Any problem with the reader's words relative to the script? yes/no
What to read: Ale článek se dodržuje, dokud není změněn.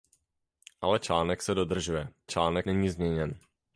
yes